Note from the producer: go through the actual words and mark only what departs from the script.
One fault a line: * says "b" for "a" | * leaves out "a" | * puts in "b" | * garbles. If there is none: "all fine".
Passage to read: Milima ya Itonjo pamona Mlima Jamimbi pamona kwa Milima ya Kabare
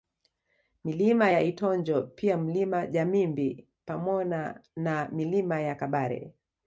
* says "pia" for "pamona"
* says "na" for "kwa"